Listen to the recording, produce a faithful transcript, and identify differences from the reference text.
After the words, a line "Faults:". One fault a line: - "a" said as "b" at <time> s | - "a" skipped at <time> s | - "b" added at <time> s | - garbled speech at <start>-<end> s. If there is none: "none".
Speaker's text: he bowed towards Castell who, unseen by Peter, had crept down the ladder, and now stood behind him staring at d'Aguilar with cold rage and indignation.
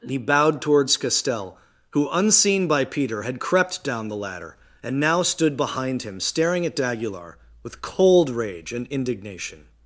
he bowed towards Castell who, unseen by Peter, had crept down the ladder, and now stood behind him staring at d'Aguilar with cold rage and indignation.
Faults:
none